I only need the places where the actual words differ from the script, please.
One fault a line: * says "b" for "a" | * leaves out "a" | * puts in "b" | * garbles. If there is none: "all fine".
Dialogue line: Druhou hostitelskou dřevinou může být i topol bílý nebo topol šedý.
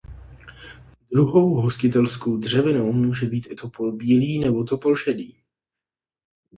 all fine